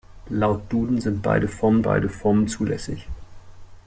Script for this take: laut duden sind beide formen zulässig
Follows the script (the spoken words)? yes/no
no